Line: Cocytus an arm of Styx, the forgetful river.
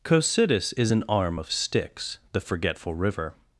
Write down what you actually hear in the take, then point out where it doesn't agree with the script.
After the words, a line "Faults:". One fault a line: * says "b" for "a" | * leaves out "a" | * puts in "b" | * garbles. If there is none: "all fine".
Cocytus is an arm of Styx, the forgetful river.
Faults:
* puts in "is"